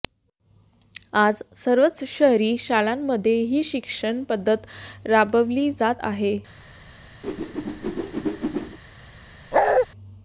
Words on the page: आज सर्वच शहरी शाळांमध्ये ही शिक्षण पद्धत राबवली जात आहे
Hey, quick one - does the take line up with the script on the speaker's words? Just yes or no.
yes